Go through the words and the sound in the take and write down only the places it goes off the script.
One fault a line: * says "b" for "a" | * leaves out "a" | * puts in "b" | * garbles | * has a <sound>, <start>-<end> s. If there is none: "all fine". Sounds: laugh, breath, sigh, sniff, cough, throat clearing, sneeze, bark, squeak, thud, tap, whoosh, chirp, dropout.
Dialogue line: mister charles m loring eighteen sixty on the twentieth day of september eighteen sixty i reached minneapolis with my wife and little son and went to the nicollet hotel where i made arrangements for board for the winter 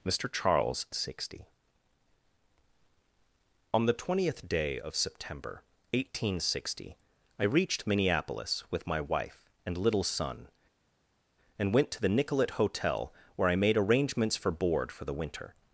* leaves out "m loring eighteen"